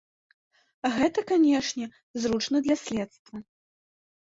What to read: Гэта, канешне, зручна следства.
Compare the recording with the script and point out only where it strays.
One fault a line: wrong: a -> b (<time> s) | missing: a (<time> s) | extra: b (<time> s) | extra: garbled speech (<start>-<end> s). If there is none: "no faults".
extra: для (2.7 s)